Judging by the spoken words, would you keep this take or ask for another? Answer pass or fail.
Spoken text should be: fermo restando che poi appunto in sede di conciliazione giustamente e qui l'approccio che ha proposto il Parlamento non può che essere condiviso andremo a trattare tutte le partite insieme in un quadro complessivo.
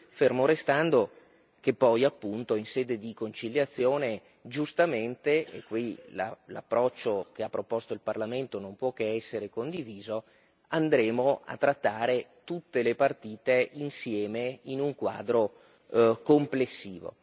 pass